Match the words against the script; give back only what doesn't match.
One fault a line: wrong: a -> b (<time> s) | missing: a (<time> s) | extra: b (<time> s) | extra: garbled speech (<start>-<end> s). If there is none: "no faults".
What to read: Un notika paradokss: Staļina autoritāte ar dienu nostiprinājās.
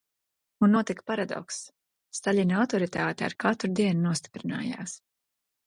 extra: katru (3.5 s)